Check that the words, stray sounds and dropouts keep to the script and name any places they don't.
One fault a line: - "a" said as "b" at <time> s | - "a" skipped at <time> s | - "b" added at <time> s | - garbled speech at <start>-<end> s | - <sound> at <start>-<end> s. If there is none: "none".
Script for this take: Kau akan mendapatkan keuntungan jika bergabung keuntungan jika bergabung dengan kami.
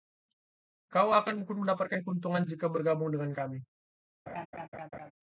- "keuntungan jika bergabung" skipped at 3.1 s
- laugh at 4.3-5.1 s